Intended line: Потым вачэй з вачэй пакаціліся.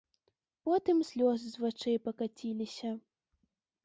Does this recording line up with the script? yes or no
no